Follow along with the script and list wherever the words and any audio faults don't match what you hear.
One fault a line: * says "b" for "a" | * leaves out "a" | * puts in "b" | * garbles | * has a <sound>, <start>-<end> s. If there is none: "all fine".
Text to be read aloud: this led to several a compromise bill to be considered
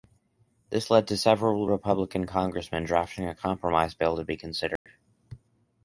* puts in "republican congressmen drafting"
* has a dropout, 4.8-4.9 s